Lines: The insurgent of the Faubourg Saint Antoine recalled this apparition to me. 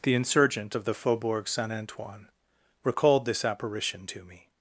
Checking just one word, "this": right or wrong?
right